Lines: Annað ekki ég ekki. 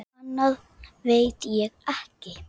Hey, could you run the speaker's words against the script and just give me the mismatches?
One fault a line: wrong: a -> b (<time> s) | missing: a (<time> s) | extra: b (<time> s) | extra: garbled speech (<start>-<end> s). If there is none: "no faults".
wrong: ekki -> veit (1.1 s)